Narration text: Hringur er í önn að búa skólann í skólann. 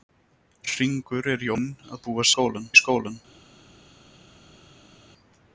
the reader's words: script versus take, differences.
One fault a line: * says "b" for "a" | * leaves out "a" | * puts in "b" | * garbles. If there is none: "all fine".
all fine